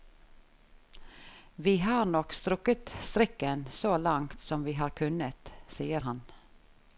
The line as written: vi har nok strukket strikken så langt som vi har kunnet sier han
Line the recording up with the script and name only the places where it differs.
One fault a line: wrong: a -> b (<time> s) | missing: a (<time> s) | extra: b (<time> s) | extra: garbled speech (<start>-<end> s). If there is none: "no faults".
no faults